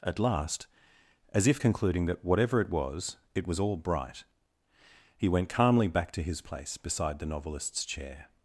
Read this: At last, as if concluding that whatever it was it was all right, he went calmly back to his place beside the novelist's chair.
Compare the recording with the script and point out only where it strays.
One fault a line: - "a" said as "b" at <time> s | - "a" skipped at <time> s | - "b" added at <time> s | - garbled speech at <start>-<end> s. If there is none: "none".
- "right" said as "bright" at 3.8 s